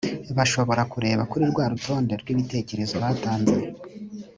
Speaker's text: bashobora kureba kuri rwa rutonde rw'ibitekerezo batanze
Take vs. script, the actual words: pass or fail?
pass